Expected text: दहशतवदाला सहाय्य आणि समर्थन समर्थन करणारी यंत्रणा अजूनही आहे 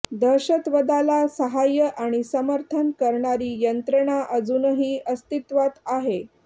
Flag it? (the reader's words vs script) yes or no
yes